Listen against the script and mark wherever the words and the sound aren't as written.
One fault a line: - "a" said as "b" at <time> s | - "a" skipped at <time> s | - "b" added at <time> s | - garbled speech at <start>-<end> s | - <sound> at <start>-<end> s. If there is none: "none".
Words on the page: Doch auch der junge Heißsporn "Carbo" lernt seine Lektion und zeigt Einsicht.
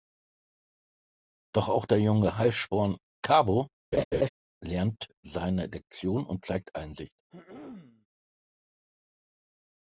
- laugh at 3.9-4.3 s
- throat clearing at 7.3-8.1 s